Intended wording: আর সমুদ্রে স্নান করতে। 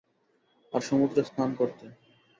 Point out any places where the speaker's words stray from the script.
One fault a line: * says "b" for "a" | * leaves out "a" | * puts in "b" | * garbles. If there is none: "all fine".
all fine